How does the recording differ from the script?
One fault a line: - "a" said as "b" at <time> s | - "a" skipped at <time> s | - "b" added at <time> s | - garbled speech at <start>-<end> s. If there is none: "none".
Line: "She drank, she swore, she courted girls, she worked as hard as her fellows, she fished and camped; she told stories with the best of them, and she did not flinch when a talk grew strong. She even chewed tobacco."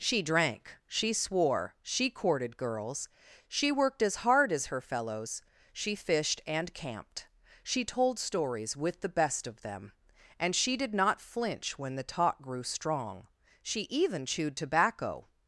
- "a" said as "the" at 12.0 s